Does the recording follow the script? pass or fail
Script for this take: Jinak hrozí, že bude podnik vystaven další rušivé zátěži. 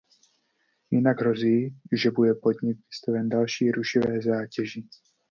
pass